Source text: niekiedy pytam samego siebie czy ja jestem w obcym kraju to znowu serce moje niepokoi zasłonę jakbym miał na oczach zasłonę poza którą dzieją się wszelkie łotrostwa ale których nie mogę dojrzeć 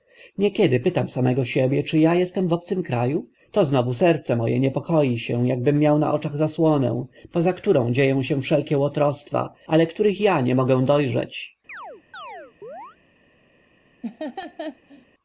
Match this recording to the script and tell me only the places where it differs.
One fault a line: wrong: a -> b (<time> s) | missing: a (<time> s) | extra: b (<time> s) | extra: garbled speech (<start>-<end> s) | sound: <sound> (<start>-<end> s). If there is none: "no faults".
wrong: zasłonę -> się (5.2 s)
extra: ja (10.2 s)
sound: chirp (11.7-13.0 s)
sound: laugh (14.0-15.1 s)